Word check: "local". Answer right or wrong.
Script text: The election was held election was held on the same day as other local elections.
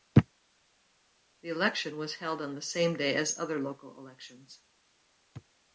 right